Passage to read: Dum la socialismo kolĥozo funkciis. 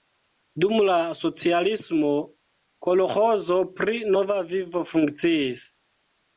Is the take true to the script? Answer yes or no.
no